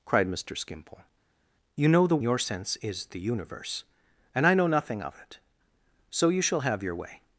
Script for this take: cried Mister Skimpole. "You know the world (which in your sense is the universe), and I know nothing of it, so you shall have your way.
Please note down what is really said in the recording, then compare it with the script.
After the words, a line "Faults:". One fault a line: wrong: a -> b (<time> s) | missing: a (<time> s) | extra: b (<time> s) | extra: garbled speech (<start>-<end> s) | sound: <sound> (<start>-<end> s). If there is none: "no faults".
cried Mister Skimpole. "You know the your sense is the universe), and I know nothing of it, so you shall have your way.
Faults:
missing: world which in (2.2 s)